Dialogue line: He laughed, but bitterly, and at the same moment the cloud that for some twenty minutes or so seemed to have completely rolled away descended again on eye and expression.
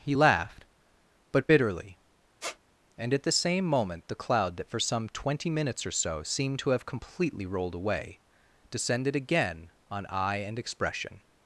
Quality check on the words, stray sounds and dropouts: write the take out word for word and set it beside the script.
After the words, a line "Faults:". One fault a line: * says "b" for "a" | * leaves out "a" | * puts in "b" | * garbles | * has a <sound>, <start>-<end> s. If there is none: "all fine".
He laughed, but bitterly, and at the same moment the cloud that for some twenty minutes or so seemed to have completely rolled away descended again on eye and expression.
Faults:
* has a squeak, 2.4-2.6 s